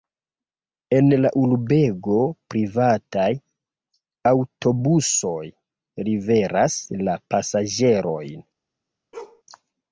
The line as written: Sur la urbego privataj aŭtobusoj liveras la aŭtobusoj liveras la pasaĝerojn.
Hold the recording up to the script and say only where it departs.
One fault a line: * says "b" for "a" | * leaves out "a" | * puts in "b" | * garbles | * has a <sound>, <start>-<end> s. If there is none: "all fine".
* says "En" for "Sur"
* leaves out "aŭtobusoj liveras la"
* has a bark, 9.1-9.4 s